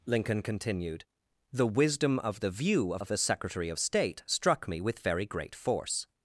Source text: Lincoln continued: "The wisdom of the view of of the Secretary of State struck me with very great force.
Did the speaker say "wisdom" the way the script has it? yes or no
yes